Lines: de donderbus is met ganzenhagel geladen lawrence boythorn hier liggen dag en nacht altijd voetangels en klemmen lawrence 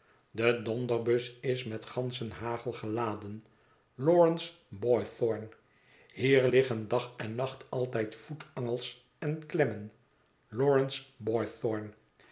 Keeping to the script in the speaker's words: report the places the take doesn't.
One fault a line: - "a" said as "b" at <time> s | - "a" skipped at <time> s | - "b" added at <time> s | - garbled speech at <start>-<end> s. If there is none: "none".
none